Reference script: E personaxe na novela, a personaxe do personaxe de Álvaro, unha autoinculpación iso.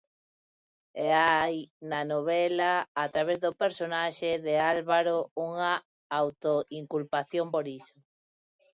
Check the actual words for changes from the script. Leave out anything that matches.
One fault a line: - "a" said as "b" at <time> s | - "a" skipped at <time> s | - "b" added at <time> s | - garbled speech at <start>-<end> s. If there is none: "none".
- "personaxe" said as "hai" at 1.2 s
- "personaxe" said as "través" at 3.1 s
- "por" added at 7.5 s